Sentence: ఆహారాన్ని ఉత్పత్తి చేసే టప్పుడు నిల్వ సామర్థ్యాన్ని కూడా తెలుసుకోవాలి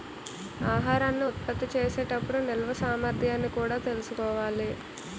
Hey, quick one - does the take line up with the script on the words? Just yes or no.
yes